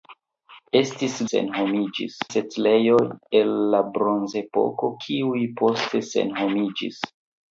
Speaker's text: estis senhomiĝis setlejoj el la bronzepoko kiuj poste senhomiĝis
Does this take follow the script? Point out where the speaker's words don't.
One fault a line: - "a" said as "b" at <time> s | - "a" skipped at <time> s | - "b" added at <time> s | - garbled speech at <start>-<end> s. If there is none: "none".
none